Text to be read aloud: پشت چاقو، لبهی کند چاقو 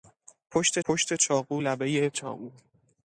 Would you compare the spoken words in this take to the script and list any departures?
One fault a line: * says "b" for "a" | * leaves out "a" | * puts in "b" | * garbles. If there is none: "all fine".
* puts in "پشت"
* leaves out "کند"